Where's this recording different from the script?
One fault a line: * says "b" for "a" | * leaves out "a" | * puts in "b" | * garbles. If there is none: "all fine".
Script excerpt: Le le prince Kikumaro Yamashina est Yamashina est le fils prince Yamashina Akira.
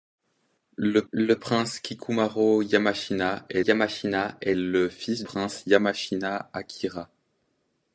all fine